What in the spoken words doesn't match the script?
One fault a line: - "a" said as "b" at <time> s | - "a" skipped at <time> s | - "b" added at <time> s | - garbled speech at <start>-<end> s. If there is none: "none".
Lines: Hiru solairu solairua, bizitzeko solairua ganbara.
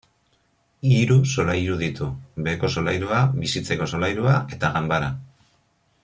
- "ditu beheko" added at 1.8 s
- "eta" added at 4.6 s